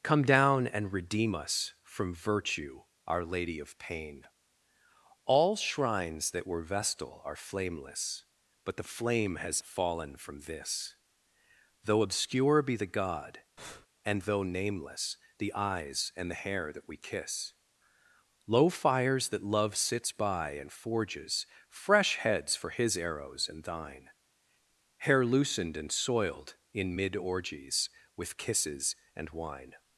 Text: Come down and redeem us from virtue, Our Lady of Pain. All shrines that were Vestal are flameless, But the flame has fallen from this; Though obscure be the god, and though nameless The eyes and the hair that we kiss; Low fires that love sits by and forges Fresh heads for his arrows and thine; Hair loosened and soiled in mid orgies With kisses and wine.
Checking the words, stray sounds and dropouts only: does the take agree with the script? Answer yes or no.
no